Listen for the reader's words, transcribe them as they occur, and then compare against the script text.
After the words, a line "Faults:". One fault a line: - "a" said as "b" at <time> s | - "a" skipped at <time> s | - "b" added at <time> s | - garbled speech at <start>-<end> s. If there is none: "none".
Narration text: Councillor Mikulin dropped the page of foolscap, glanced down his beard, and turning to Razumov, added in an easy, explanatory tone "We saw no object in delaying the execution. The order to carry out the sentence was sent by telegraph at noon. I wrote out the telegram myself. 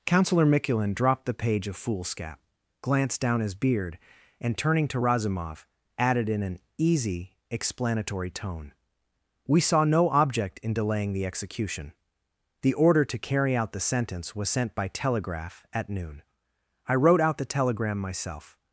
Councillor Mikulin dropped the page of foolscap, glanced down his beard, and turning to Razumov, added in an easy, explanatory tone "We saw no object in delaying the execution. The order to carry out the sentence was sent by telegraph at noon. I wrote out the telegram myself.
Faults:
none